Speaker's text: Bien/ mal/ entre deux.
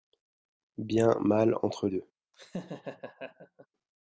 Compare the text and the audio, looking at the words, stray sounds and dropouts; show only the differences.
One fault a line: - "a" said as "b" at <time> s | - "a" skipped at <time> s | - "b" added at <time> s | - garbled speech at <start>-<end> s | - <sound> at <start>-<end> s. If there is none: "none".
- laugh at 2.3-3.7 s